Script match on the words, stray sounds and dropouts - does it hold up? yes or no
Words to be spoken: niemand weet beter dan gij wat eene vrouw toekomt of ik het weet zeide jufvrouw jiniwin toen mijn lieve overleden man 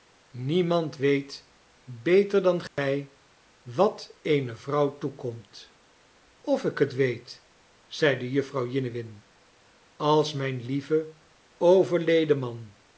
no